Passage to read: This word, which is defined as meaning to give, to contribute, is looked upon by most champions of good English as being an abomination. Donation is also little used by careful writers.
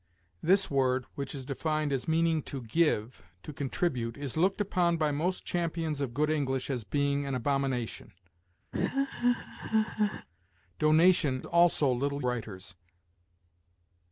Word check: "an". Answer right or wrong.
right